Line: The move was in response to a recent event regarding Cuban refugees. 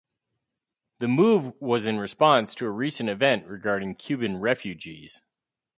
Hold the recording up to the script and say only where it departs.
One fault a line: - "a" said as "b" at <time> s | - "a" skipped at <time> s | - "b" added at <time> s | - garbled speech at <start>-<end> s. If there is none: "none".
none